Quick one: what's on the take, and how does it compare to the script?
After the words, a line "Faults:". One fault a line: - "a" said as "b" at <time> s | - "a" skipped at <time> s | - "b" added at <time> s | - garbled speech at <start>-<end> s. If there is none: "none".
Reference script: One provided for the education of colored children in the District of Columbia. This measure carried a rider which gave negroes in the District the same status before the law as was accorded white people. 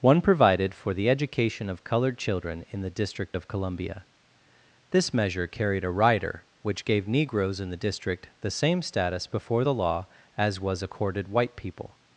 One provided for the education of colored children in the District of Columbia. This measure carried a rider which gave negroes in the District the same status before the law as was accorded white people.
Faults:
none